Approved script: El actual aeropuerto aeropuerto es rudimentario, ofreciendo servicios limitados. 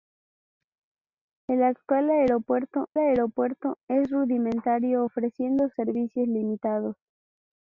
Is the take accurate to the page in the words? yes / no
yes